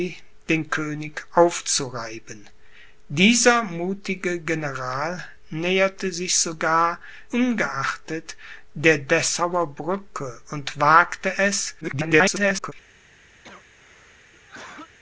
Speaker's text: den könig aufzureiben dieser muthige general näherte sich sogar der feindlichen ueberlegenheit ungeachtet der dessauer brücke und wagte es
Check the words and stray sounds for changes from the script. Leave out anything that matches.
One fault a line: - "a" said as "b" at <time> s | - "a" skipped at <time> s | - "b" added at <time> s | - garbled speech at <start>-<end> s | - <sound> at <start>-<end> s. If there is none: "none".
- "der feindlichen ueberlegenheit" skipped at 7.0 s
- garbled speech at 11.8-12.7 s
- cough at 13.4-15.0 s